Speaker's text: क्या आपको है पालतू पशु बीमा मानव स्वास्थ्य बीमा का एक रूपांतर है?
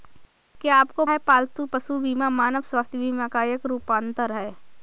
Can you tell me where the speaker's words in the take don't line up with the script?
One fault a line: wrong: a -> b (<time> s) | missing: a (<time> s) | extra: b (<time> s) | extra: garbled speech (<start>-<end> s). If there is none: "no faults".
no faults